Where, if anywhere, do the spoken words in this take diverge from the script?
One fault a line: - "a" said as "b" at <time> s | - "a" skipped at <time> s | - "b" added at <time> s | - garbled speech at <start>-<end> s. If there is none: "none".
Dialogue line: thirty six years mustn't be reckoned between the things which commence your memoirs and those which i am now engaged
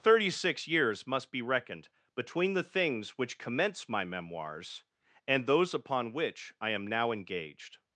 - "mustn't" said as "must" at 1.1 s
- "your" said as "my" at 3.9 s
- "upon" added at 5.8 s